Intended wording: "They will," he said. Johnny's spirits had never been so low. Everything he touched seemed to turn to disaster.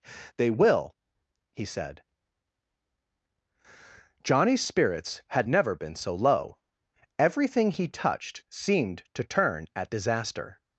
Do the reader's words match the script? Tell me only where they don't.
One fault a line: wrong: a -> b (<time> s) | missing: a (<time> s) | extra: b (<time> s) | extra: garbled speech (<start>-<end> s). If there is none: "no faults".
wrong: to -> at (9.8 s)